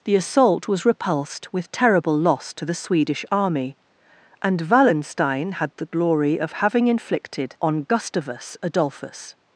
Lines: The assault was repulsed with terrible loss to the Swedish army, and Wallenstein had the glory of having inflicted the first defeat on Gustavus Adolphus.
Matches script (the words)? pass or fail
fail